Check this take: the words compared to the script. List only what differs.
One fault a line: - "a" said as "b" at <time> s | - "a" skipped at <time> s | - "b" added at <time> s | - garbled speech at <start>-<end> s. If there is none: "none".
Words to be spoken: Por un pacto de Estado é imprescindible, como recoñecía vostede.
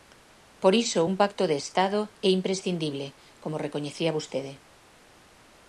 - "iso" added at 0.8 s